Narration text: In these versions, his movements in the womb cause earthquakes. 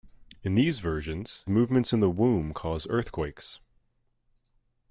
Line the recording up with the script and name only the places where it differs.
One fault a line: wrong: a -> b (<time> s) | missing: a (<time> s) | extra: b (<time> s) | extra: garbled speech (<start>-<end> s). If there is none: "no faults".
missing: his (1.4 s)